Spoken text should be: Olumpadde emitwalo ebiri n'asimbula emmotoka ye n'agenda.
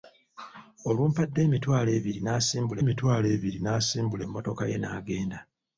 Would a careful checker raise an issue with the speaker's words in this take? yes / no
yes